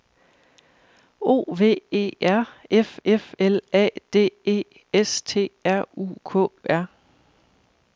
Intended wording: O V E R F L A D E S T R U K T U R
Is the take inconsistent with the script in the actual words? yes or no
yes